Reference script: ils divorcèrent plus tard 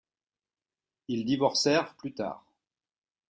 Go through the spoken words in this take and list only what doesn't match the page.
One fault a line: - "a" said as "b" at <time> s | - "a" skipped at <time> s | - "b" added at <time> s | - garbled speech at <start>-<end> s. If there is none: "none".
none